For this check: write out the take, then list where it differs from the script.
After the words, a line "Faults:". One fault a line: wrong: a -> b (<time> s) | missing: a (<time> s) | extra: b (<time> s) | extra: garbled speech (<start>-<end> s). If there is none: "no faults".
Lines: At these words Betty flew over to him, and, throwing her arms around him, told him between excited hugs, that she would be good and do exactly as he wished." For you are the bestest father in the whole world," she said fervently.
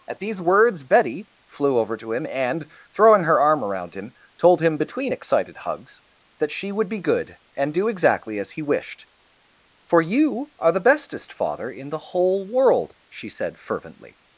At these words Betty flew over to him, and, throwing her arm around him, told him between excited hugs, that she would be good and do exactly as he wished." For you are the bestest father in the whole world," she said fervently.
Faults:
wrong: arms -> arm (3.4 s)